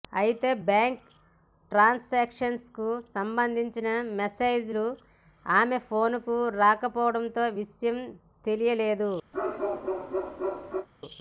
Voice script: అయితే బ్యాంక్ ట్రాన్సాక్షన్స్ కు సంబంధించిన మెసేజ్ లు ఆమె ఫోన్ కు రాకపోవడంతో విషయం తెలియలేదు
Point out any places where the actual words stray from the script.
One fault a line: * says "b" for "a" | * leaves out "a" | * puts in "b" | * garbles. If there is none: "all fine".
all fine